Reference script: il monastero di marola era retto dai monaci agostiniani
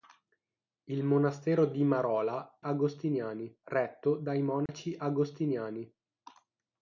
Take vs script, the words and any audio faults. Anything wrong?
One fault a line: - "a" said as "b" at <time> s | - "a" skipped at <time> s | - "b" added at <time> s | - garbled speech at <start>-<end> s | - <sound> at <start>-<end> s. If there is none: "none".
- "era" said as "agostiniani" at 2.6 s
- dropout at 4.7-4.7 s